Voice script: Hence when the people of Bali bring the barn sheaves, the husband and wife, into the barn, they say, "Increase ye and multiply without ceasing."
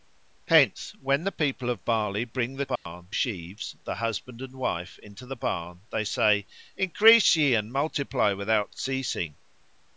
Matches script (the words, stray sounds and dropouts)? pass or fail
fail